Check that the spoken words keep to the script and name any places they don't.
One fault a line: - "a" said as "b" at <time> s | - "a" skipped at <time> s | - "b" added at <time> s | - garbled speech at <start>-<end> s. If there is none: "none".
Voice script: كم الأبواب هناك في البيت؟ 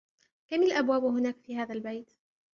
- "هذا" added at 1.6 s